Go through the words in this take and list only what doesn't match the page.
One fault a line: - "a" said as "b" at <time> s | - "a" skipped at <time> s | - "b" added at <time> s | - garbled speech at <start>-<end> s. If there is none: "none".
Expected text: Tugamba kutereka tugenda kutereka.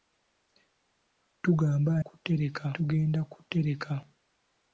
none